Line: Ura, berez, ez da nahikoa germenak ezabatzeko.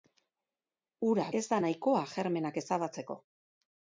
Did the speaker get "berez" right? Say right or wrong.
wrong